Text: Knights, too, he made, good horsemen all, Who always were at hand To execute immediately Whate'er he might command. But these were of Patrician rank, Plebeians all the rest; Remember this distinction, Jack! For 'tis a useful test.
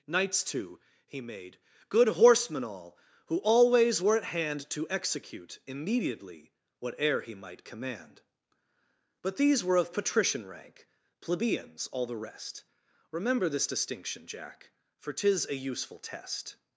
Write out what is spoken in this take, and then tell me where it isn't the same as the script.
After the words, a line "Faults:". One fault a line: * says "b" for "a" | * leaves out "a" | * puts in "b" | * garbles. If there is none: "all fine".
Knights, too, he made, good horsemen all, Who always were at hand To execute immediately Whate'er he might command. But these were of Patrician rank, Plebeians all the rest; Remember this distinction, Jack! For 'tis a useful test.
Faults:
all fine